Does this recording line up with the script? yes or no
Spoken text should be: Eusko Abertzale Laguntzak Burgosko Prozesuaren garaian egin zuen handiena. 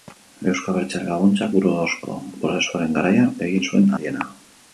yes